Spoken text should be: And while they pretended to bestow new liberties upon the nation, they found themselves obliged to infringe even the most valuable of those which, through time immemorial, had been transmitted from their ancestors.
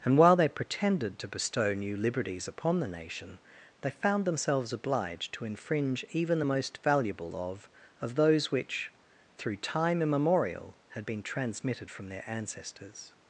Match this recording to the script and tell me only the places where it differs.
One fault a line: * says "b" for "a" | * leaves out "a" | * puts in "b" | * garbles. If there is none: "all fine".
* puts in "of"